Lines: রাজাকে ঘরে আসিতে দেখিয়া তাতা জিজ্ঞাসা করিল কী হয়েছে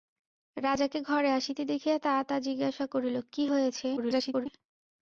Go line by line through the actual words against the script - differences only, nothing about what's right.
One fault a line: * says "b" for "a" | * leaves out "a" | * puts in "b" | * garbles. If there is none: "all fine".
* garbles